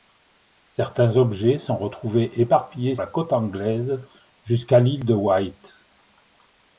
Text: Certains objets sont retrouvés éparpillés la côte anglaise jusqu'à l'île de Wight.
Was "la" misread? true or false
false